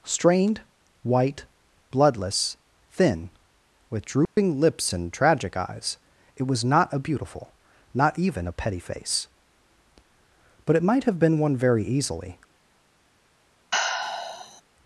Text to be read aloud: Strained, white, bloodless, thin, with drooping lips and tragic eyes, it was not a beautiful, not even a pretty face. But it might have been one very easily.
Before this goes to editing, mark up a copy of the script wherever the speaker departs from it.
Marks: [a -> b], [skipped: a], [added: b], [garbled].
Strained, white, bloodless, thin, with drooping lips and tragic eyes, it was not a beautiful, not even a [pretty -> petty] face. But it might have been one very easily.